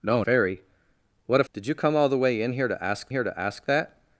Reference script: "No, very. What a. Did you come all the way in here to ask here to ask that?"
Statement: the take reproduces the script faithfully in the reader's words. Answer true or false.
true